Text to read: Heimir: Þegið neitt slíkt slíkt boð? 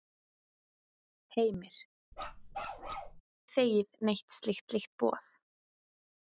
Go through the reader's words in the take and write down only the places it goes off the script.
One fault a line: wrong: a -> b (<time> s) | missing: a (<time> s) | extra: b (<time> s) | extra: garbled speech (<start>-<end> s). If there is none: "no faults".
no faults